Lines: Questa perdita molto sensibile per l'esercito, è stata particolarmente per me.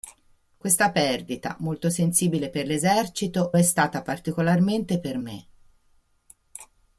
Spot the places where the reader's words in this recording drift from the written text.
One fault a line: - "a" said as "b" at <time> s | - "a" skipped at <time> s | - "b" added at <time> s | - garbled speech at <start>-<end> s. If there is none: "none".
none